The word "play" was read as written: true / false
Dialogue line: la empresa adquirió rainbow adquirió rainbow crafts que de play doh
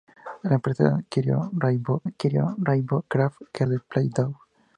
true